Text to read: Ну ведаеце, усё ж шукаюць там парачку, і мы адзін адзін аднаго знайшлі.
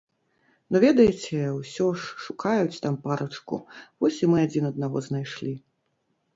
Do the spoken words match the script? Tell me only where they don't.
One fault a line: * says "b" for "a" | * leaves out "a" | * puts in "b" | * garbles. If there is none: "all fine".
* puts in "вось"
* leaves out "адзін"